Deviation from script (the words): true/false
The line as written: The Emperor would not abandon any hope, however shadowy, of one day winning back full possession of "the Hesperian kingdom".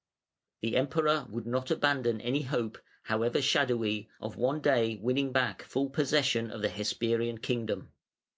false